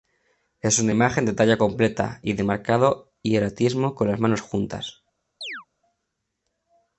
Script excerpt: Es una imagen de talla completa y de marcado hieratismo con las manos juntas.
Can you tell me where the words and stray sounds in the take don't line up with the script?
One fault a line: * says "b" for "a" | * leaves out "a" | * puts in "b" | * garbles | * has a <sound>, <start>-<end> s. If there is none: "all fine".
* has a chirp, 5.4-5.7 s